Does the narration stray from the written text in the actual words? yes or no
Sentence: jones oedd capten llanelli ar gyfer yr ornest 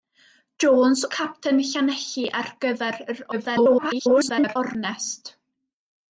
yes